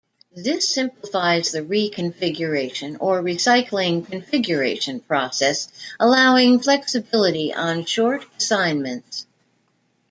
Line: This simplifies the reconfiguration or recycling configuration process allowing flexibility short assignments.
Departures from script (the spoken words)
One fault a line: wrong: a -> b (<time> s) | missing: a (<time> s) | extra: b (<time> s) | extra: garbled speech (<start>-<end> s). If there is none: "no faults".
extra: on (7.5 s)